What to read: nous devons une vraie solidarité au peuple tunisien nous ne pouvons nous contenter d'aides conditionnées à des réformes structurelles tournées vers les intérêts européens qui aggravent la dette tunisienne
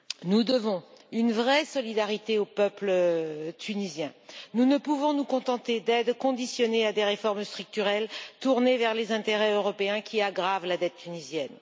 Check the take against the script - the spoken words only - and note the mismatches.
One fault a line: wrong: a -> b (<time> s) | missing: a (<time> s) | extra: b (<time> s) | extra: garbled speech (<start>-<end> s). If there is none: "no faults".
no faults